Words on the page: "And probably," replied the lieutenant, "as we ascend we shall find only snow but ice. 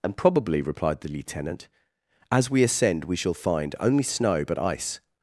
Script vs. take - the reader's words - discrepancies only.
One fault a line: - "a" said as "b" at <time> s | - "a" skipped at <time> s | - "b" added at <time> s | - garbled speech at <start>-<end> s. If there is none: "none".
none